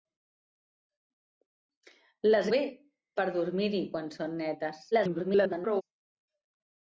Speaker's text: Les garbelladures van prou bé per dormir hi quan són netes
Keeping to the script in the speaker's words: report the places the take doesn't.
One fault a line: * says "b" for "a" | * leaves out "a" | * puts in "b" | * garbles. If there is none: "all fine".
* leaves out "garbelladures van prou"
* garbles